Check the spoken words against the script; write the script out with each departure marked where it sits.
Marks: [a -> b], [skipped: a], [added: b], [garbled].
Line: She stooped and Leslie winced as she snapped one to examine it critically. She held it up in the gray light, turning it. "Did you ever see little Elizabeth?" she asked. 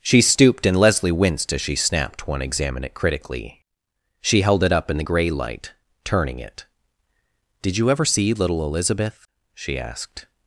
She stooped and Leslie winced as she snapped one [skipped: to] examine it critically. She held it up in the gray light, turning it. "Did you ever see little Elizabeth?" she asked.